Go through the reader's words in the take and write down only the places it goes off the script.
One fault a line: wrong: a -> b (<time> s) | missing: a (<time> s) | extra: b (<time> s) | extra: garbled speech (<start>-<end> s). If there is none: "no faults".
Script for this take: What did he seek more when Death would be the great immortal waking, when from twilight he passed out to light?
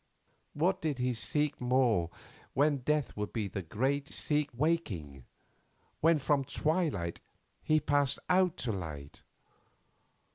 wrong: immortal -> seek (4.1 s)